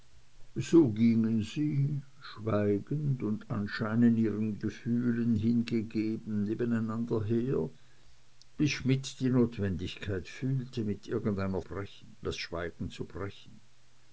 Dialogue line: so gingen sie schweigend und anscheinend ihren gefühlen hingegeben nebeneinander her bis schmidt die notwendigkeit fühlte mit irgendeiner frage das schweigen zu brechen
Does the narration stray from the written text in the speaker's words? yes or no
yes